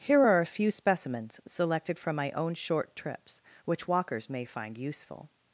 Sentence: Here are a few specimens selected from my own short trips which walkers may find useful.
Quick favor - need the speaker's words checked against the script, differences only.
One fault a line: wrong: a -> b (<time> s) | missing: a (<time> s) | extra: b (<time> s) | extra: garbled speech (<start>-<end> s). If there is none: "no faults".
no faults